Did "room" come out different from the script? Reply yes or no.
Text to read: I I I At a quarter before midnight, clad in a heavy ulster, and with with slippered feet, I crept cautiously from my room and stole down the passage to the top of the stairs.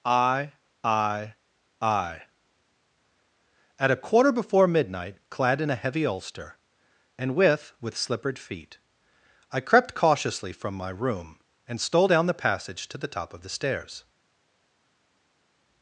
no